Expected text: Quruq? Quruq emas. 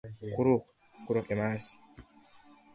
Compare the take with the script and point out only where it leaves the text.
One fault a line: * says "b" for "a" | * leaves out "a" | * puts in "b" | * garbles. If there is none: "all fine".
all fine